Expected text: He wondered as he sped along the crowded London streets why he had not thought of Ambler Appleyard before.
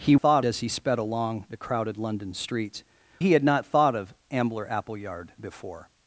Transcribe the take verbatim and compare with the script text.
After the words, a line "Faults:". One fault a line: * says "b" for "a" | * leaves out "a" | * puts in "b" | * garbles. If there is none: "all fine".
He thought as he sped along the crowded London streets he had not thought of Ambler Appleyard before.
Faults:
* says "thought" for "wondered"
* leaves out "why"